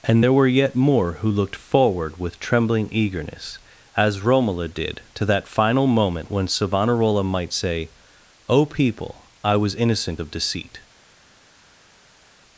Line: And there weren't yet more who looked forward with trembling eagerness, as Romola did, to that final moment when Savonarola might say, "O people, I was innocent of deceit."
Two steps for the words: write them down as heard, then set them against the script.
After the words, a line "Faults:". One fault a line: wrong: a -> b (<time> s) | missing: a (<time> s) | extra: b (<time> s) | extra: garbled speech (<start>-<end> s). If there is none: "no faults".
And there were yet more who looked forward with trembling eagerness, as Romola did, to that final moment when Savonarola might say, "O people, I was innocent of deceit."
Faults:
wrong: weren't -> were (0.3 s)